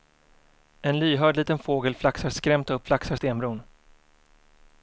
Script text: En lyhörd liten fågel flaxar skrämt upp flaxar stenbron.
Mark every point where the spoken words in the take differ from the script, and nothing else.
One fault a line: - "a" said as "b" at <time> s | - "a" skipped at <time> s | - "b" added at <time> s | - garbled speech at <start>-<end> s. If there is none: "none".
none